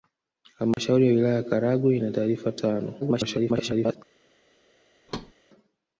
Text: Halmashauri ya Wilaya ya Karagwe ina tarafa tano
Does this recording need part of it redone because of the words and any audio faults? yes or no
yes